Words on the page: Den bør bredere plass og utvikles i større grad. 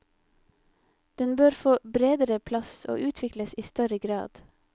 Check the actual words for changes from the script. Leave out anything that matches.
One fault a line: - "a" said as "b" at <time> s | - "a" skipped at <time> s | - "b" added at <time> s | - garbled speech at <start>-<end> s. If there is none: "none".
- "få" added at 1.5 s